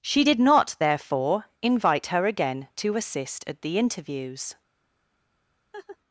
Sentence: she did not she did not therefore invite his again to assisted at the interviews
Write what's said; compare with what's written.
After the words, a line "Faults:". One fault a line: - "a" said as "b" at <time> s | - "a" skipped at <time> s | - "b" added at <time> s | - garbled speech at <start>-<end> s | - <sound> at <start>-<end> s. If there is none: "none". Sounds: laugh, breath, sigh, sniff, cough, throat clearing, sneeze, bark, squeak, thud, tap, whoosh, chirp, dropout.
she did not therefore invite her again to assist at the interviews
Faults:
- "she did not" skipped at 0.8 s
- "his" said as "her" at 2.1 s
- "assisted" said as "assist" at 3.0 s
- laugh at 5.7-6.0 s